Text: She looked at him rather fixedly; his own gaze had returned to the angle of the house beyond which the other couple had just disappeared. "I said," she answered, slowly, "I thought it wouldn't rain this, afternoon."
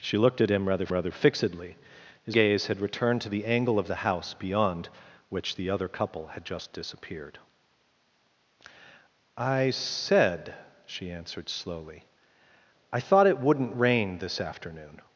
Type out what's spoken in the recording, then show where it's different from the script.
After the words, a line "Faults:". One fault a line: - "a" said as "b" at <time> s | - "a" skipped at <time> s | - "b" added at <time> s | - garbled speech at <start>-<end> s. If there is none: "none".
She looked at him rather rather fixedly; his gaze had returned to the angle of the house beyond which the other couple had just disappeared. "I said," she answered, slowly, "I thought it wouldn't rain this, afternoon."
Faults:
- "rather" added at 0.9 s
- "own" skipped at 2.4 s